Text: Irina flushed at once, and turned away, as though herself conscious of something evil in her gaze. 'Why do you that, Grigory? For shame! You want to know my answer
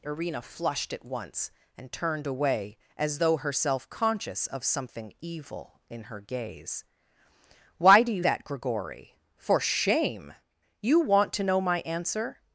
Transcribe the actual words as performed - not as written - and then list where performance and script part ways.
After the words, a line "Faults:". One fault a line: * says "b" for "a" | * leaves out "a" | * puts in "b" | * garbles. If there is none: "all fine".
Irina flushed at once, and turned away, as though herself conscious of something evil in her gaze. 'Why do you that, Grigory? For shame! You want to know my answer
Faults:
all fine